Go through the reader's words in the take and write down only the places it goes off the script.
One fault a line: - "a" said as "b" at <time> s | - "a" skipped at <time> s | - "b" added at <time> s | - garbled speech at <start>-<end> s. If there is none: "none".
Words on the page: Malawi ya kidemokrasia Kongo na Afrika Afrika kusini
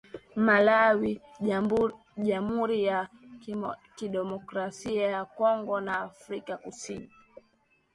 - "jamhuri" added at 2.2 s
- "ya" added at 5.1 s
- "Afrika" skipped at 6.6 s